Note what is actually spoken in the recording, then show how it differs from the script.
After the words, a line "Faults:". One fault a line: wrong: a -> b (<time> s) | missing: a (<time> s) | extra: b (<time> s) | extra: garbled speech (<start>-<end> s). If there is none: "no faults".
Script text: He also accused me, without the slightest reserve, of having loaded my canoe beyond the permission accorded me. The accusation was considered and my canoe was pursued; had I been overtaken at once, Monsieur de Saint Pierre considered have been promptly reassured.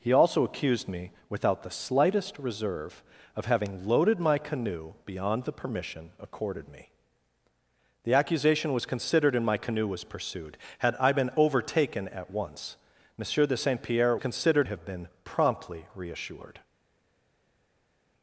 He also accused me, without the slightest reserve, of having loaded my canoe beyond the permission accorded me. The accusation was considered and my canoe was pursued; had I been overtaken at once, Monsieur de Saint Pierre considered have been promptly reassured.
Faults:
no faults